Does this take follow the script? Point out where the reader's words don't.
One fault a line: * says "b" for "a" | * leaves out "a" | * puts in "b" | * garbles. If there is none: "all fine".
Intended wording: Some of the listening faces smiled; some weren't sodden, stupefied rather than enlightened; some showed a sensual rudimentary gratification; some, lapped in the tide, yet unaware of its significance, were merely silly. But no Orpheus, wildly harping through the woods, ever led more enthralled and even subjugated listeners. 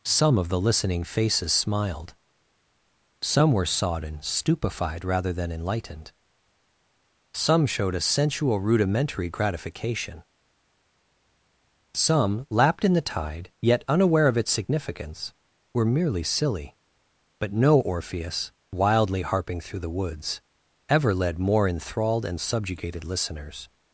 * says "were" for "weren't"
* leaves out "even"